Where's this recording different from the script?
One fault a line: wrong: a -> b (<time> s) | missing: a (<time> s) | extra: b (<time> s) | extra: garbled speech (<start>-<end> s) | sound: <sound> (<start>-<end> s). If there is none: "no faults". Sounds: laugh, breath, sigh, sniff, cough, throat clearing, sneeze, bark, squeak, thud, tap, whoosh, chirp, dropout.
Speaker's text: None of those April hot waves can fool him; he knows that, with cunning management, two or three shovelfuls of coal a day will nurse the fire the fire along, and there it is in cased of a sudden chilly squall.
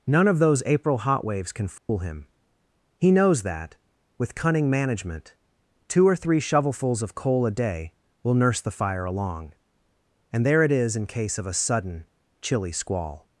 sound: dropout (1.8-1.9 s)
missing: the fire (9.1 s)
wrong: cased -> case (11.1 s)